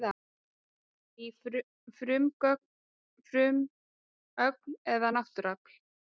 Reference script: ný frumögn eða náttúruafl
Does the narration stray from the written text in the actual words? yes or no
no